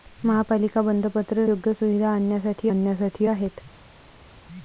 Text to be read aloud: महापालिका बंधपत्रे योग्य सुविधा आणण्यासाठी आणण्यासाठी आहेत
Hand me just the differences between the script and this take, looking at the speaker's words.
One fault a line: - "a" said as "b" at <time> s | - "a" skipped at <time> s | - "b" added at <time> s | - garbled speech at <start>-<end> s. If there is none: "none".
none